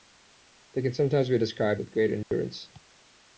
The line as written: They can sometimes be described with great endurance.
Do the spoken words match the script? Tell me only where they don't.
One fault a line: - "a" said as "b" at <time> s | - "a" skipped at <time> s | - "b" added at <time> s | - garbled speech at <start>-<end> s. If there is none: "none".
none